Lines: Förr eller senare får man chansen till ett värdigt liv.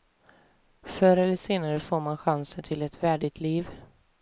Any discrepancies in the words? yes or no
no